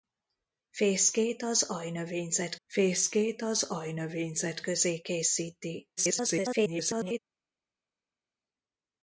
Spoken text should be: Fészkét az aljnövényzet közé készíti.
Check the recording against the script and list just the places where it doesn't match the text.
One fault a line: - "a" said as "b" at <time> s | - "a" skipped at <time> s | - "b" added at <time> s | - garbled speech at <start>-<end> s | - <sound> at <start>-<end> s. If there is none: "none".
- "fészkét az aljnövényzet" added at 2.6 s
- garbled speech at 6.0-7.2 s